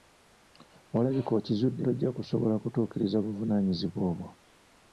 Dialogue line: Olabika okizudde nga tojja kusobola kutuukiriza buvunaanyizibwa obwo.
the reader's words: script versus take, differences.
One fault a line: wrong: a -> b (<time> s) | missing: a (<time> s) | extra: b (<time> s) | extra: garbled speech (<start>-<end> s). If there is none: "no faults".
missing: nga (1.8 s)